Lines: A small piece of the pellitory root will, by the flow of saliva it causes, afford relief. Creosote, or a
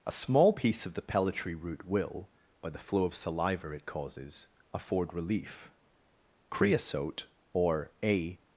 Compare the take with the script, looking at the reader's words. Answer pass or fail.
pass